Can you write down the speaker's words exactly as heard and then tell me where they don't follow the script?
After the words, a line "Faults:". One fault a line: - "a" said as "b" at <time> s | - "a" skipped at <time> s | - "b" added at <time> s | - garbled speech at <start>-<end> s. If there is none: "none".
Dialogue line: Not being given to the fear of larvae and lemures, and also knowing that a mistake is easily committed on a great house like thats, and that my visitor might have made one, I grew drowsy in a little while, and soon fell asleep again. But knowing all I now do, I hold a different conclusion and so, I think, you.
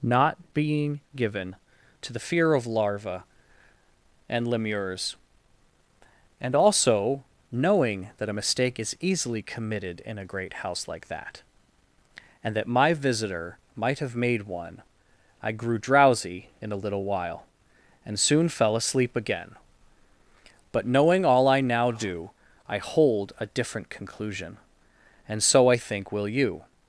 Not being given to the fear of larvae and lemures, and also knowing that a mistake is easily committed in a great house like that, and that my visitor might have made one, I grew drowsy in a little while, and soon fell asleep again. But knowing all I now do, I hold a different conclusion and so, I think, will you.
Faults:
- "on" said as "in" at 10.0 s
- "thats" said as "that" at 11.1 s
- "will" added at 26.1 s